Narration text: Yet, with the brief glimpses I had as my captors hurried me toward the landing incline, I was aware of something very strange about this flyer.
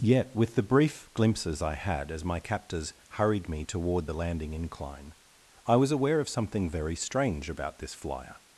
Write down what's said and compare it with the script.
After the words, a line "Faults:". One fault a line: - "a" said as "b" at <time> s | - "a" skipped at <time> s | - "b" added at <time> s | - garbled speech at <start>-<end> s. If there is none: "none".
Yet, with the brief glimpses I had as my captors hurried me toward the landing incline, I was aware of something very strange about this flyer.
Faults:
none